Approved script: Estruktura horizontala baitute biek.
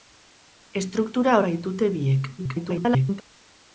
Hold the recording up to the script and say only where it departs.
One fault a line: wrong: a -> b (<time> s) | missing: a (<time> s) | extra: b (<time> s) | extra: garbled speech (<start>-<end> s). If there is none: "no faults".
missing: horizontala (1.4 s)
extra: garbled speech (2.4-3.2 s)